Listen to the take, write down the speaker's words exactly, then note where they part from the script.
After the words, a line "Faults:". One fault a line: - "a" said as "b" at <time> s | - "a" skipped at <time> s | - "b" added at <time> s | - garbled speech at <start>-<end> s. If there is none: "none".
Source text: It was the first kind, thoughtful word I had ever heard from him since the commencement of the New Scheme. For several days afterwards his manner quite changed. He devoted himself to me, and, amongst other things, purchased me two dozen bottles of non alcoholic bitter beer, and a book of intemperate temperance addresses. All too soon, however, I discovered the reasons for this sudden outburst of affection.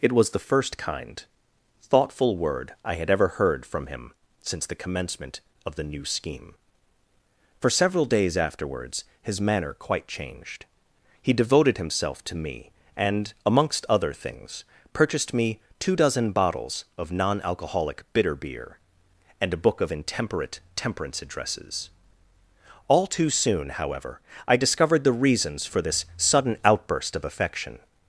It was the first kind, thoughtful word I had ever heard from him since the commencement of the New Scheme. For several days afterwards his manner quite changed. He devoted himself to me, and, amongst other things, purchased me two dozen bottles of non alcoholic bitter beer, and a book of intemperate temperance addresses. All too soon, however, I discovered the reasons for this sudden outburst of affection.
Faults:
none